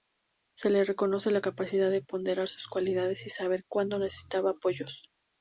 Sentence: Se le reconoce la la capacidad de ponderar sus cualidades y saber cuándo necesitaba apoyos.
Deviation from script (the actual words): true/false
true